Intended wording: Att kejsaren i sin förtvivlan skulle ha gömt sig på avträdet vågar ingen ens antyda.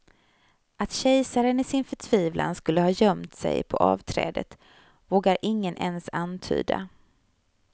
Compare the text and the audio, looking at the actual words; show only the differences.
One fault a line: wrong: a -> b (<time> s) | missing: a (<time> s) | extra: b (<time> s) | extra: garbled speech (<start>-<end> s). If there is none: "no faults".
no faults